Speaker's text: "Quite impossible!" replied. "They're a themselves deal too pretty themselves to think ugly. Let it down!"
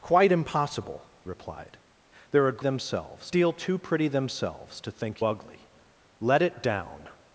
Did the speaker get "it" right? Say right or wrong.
right